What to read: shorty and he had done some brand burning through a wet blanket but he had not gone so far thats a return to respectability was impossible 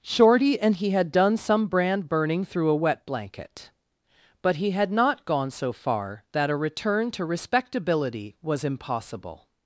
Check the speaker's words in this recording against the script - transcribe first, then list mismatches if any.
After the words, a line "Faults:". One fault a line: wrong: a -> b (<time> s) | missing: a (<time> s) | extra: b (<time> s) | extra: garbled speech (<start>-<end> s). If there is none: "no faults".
shorty and he had done some brand burning through a wet blanket but he had not gone so far that a return to respectability was impossible
Faults:
wrong: thats -> that (6.3 s)